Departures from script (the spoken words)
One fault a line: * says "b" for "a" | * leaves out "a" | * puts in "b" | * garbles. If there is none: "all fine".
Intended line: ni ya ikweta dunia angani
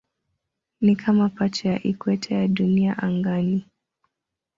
* puts in "kama pacha"
* puts in "ya"